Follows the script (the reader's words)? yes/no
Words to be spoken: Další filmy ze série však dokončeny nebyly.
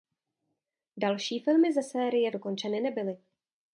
no